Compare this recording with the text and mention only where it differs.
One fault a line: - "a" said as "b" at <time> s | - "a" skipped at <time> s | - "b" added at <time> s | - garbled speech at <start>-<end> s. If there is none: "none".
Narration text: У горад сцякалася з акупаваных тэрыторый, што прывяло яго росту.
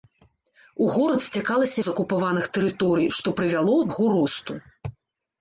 none